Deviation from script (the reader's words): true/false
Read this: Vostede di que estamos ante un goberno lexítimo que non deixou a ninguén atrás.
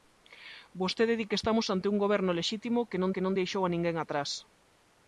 true